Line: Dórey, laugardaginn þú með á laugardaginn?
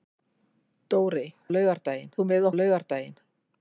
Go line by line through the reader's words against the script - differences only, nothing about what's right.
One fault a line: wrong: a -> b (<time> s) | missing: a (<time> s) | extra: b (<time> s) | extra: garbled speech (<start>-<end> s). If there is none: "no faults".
no faults